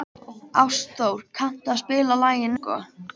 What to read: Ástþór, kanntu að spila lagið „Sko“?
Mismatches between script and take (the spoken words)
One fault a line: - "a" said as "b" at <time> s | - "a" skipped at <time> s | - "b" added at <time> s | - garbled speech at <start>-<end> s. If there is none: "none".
none